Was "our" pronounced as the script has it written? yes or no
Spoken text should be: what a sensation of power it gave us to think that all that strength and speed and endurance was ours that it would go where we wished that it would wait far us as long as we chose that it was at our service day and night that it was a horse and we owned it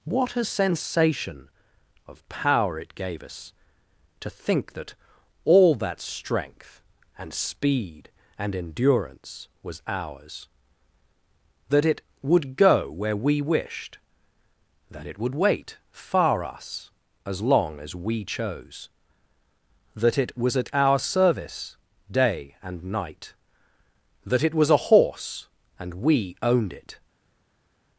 yes